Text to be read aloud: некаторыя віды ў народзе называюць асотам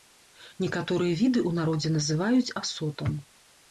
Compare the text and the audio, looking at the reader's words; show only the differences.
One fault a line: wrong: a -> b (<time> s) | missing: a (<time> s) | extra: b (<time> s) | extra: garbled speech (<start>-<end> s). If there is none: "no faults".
no faults